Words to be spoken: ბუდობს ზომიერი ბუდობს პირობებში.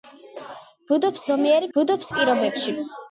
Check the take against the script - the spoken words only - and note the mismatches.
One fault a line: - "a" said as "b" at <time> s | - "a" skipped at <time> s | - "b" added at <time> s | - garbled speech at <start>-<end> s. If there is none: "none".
none